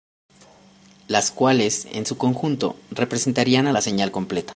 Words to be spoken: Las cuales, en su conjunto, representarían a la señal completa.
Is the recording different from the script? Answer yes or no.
no